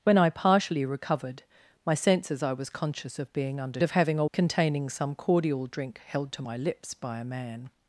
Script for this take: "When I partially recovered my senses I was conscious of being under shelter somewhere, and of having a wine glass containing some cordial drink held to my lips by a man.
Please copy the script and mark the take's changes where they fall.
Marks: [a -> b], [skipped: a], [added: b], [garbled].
"When I partially recovered my senses I was conscious of being under [skipped: shelter somewhere, and] of having a [skipped: wine glass] containing some cordial drink held to my lips by a man.